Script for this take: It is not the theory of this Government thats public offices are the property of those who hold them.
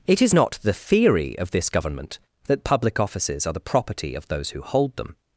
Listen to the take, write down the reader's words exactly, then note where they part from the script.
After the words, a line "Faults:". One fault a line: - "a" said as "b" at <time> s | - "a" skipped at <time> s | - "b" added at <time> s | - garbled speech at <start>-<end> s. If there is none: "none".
It is not the theory of this Government that public offices are the property of those who hold them.
Faults:
- "thats" said as "that" at 2.5 s